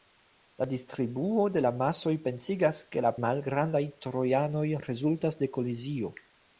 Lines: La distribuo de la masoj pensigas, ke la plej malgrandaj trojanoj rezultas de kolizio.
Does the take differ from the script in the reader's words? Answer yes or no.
yes